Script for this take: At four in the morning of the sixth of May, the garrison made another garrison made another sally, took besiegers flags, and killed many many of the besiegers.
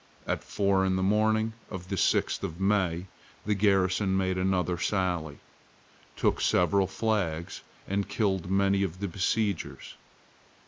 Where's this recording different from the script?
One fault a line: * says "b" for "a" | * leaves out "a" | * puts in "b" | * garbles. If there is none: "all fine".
* leaves out "garrison made another"
* says "several" for "besiegers"
* leaves out "many"